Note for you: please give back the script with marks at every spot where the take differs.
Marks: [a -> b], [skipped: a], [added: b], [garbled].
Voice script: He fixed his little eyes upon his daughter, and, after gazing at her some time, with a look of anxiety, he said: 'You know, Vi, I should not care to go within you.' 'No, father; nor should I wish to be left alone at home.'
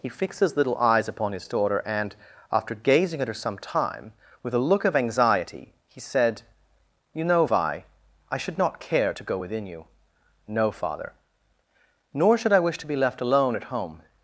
He fixed his little eyes upon his daughter, and, after gazing at her some time, with a look of anxiety, he said: 'You know, Vi, I should not care to go within you.' 'No, father; nor should I wish to be left alone at home.'